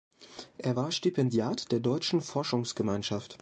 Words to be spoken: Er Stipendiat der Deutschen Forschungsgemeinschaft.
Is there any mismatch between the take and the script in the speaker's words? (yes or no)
yes